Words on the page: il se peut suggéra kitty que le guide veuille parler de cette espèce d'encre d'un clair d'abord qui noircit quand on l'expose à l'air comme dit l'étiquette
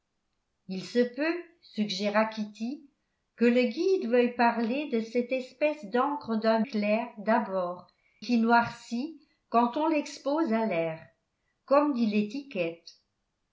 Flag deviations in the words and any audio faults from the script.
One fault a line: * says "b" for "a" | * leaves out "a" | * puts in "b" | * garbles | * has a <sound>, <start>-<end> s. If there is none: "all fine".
all fine